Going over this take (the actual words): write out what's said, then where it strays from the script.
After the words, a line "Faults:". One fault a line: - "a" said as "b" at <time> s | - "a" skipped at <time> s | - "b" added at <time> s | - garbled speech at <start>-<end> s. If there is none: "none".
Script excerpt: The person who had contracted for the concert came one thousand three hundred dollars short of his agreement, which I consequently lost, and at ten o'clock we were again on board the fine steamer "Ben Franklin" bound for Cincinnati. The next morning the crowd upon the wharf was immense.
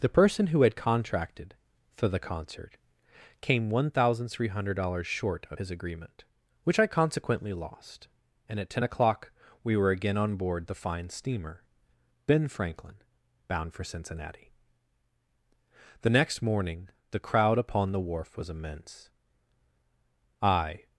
The person who had contracted for the concert came one thousand three hundred dollars short of his agreement, which I consequently lost, and at ten o'clock we were again on board the fine steamer "Ben Franklin" bound for Cincinnati. The next morning the crowd upon the wharf was immense. I
Faults:
- "I" added at 20.4 s